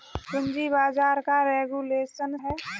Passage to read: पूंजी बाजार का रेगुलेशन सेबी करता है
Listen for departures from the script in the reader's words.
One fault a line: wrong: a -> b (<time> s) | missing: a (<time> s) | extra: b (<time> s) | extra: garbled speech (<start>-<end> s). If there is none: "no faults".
missing: सेबी करता (2.4 s)